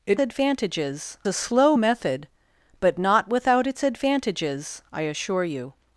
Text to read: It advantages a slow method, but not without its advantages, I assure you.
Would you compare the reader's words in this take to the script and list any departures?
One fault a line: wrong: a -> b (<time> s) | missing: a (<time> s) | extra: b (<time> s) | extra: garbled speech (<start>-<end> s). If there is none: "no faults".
no faults